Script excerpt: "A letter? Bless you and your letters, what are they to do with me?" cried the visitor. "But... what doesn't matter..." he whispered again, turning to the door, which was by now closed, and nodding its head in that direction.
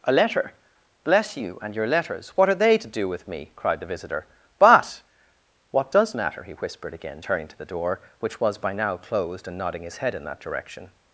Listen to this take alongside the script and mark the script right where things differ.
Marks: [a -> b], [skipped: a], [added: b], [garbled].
"A letter? Bless you and your letters, what are they to do with me?" cried the visitor. "But... what [doesn't -> does] matter..." he whispered again, turning to the door, which was by now closed, and nodding [its -> his] head in that direction.